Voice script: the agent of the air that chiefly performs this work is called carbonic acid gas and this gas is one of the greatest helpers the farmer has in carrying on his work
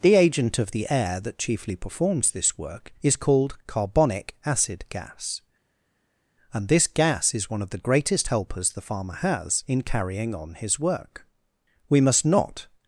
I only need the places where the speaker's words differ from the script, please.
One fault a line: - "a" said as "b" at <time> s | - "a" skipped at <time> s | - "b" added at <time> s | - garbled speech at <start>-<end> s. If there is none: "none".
- "we must not" added at 11.9 s